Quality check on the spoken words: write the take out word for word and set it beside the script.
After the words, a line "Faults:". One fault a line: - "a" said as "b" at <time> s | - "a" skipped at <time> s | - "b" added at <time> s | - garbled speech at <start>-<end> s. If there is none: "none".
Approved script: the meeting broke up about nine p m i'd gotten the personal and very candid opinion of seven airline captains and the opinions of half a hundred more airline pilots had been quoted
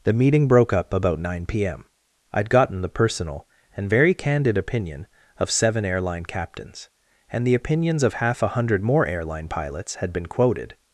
the meeting broke up about nine p m i'd gotten the personal and very candid opinion of seven airline captains and the opinions of half a hundred more airline pilots had been quoted
Faults:
none